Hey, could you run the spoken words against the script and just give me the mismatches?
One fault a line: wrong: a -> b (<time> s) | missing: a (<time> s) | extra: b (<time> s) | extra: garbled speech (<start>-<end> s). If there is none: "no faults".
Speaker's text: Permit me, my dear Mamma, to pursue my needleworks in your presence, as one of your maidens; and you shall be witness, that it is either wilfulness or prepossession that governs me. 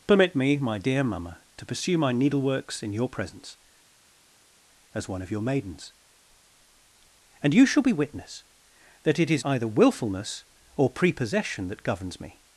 no faults